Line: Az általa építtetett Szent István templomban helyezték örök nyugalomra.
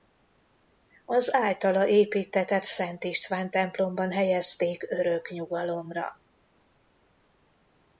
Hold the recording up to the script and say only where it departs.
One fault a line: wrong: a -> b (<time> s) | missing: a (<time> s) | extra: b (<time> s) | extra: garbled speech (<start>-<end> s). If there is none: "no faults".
no faults